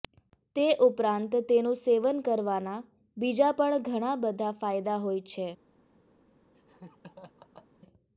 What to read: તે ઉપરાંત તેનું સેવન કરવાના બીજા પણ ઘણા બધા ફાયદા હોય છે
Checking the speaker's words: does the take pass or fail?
pass